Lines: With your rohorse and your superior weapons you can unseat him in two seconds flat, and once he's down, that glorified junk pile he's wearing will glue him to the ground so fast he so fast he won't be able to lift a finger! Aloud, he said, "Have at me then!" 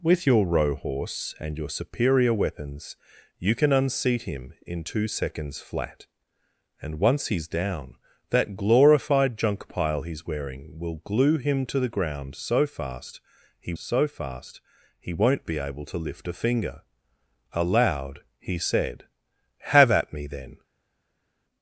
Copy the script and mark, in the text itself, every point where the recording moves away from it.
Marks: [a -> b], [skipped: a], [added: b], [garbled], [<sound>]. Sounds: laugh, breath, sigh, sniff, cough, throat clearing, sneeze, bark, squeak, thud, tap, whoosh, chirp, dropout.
With your rohorse and your superior weapons you can unseat him in two seconds flat, and once he's down, that glorified junk pile he's wearing will glue him to the ground so fast he so fast he won't be able to lift a finger! Aloud, he said, "Have at me then!"